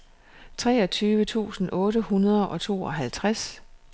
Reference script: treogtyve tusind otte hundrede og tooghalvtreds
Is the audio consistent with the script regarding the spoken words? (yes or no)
yes